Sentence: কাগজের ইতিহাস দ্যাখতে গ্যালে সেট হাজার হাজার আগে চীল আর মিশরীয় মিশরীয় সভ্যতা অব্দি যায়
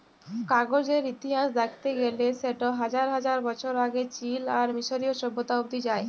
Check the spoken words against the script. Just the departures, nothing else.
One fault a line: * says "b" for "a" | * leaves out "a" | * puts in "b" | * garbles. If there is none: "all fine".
* puts in "বছর"
* leaves out "মিশরীয়"